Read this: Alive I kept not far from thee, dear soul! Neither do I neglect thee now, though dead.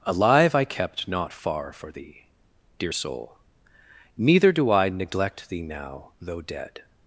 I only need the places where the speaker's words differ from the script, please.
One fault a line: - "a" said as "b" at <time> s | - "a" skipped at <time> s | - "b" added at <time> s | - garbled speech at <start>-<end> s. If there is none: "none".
- "from" said as "for" at 1.7 s